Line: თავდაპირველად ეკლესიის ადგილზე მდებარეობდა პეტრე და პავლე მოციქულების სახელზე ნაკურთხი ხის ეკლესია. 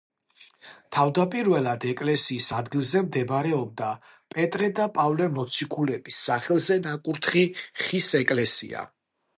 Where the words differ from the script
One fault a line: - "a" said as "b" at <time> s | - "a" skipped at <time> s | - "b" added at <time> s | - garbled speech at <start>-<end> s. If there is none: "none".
none